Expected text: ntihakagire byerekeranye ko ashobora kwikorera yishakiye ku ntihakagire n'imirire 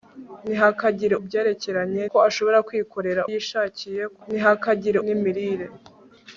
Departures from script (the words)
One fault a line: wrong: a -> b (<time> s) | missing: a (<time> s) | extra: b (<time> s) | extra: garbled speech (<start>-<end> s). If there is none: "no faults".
no faults